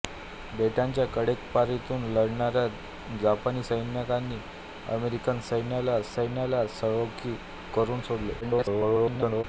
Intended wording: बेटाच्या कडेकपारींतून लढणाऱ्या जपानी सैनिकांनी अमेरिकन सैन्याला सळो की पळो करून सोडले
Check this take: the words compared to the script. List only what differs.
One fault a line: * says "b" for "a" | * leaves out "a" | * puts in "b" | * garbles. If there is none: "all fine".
* puts in "सैन्याला"
* leaves out "पळो"
* garbles